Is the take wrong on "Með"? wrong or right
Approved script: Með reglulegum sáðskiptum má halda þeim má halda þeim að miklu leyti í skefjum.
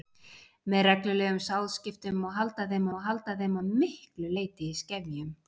right